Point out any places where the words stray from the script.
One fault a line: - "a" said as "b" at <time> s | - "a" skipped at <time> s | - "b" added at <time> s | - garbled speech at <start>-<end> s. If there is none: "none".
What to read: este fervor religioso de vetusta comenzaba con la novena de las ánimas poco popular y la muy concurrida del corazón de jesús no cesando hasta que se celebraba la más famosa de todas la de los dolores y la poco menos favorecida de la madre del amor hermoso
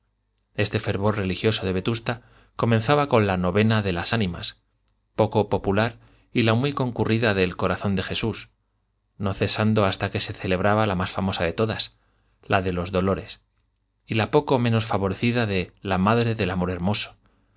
none